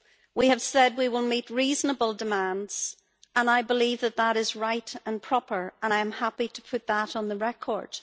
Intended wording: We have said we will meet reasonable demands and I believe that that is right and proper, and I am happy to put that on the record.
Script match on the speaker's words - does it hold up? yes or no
yes